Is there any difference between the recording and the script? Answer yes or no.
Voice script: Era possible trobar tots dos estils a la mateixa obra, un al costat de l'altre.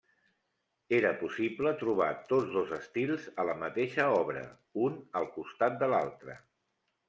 no